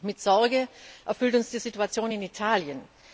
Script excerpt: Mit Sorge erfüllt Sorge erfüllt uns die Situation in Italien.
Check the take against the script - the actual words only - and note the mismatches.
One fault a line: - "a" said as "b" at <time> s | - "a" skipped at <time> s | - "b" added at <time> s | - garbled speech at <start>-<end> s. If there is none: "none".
- "Sorge erfüllt" skipped at 1.4 s